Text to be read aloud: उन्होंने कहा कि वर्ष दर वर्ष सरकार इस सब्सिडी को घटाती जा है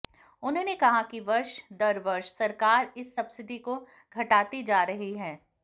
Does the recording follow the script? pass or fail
fail